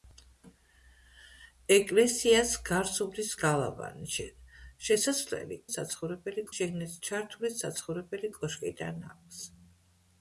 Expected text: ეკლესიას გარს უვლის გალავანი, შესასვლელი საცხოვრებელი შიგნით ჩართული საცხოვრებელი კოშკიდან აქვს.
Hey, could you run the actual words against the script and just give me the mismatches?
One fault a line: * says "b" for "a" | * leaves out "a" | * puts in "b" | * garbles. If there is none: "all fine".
all fine